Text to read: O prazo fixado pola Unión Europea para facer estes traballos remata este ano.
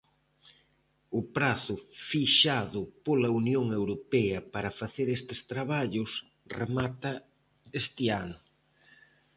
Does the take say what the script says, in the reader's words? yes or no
yes